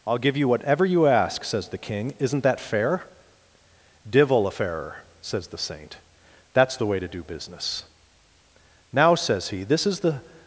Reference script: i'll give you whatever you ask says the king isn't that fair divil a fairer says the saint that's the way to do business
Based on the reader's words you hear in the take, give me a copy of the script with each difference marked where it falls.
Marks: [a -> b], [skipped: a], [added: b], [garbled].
i'll give you whatever you ask says the king isn't that fair divil a fairer says the saint that's the way to do business [added: now says he this is the]